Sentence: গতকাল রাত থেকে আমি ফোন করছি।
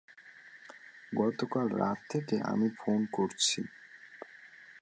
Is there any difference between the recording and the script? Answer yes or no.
no